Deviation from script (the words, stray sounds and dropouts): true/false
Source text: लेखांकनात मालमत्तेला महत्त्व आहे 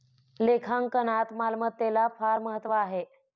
true